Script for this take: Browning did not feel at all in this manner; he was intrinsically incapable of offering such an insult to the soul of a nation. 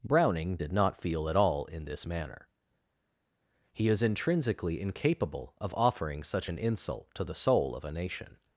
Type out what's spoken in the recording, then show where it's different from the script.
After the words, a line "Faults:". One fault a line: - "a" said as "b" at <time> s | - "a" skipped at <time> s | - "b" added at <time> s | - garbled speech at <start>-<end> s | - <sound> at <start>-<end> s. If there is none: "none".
Browning did not feel at all in this manner; he is intrinsically incapable of offering such an insult to the soul of a nation.
Faults:
- "was" said as "is" at 3.9 s